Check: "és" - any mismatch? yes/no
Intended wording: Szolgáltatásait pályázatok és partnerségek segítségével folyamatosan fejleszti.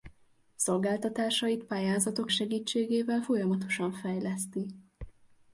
yes